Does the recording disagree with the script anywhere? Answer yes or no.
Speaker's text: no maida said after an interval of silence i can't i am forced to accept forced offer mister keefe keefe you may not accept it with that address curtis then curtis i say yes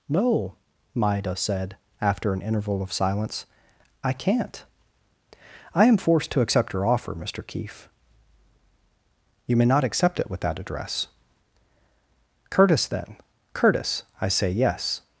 yes